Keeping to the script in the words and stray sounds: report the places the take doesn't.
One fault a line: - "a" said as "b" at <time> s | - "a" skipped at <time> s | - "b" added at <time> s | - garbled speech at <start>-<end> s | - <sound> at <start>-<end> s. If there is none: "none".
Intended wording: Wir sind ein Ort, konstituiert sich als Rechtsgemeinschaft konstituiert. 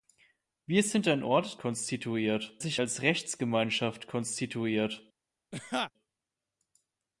- laugh at 5.5-5.9 s